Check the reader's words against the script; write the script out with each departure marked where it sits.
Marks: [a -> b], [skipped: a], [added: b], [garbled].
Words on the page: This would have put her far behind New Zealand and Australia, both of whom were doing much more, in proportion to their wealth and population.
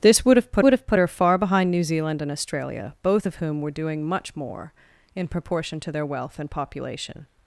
This would have put [added: would have put] her far behind New Zealand and Australia, both of whom were doing much more, in proportion to their wealth and population.